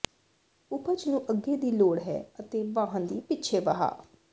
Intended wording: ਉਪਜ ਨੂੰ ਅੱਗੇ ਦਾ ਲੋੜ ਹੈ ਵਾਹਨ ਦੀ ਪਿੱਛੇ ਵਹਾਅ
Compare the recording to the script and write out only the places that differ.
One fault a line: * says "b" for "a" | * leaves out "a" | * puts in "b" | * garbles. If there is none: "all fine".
* says "ਦੀ" for "ਦਾ"
* puts in "ਅਤੇ"